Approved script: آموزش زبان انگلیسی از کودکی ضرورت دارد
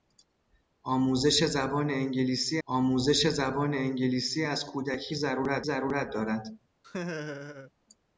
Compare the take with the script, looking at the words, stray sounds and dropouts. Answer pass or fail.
fail